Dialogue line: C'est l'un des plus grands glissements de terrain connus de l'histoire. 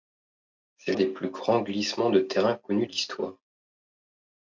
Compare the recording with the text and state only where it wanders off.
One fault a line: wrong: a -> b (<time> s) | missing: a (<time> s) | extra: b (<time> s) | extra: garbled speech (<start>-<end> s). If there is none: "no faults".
missing: l'un (0.9 s)
missing: de (2.9 s)